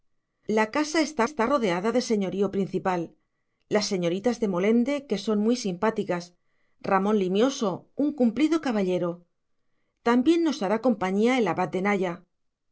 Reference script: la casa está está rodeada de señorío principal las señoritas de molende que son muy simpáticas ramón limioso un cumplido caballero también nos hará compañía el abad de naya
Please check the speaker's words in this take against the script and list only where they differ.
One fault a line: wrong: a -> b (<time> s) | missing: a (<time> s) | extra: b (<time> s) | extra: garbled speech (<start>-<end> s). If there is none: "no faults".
no faults